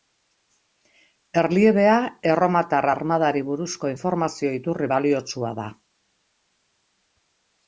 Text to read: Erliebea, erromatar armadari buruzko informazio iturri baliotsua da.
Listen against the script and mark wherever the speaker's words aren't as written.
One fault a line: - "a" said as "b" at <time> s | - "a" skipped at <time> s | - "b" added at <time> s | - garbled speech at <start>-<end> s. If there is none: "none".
none